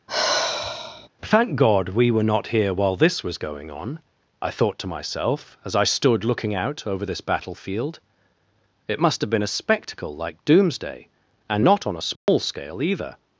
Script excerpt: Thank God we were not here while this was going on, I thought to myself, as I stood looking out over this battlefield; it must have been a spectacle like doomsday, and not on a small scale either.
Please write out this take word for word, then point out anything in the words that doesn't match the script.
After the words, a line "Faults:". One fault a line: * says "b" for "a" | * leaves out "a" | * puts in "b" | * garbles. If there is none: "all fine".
Thank God we were not here while this was going on, I thought to myself, as I stood looking out over this battlefield; it must have been a spectacle like doomsday, and not on a small scale either.
Faults:
all fine